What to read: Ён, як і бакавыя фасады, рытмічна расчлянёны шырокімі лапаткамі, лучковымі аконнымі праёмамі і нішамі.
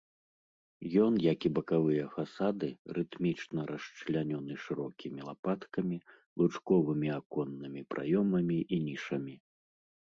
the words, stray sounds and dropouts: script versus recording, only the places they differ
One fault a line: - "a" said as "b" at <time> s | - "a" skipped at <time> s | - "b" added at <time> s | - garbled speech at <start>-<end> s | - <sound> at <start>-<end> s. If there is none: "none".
none